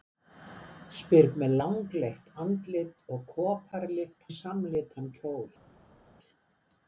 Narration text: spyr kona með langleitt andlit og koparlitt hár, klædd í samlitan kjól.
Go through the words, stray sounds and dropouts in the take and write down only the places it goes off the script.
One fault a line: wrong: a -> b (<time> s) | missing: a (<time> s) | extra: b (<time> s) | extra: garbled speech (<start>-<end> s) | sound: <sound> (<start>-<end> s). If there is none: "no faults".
missing: kona (1.3 s)
missing: hár klædd (4.3 s)